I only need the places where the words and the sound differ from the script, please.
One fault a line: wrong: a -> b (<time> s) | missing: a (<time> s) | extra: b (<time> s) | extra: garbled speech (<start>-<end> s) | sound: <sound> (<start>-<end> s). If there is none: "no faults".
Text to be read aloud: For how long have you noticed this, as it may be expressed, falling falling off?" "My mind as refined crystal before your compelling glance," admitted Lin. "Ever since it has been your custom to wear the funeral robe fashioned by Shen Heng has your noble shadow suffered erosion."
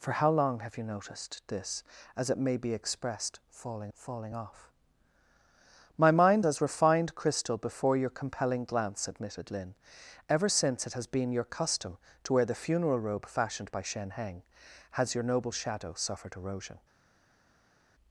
no faults